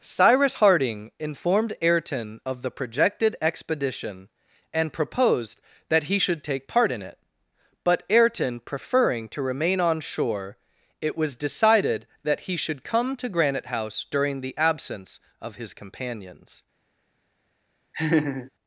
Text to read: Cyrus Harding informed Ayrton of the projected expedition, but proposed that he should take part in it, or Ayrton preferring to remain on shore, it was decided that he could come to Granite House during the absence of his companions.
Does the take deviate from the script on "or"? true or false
true